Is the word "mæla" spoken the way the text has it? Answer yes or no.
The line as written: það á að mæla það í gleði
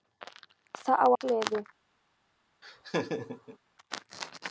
no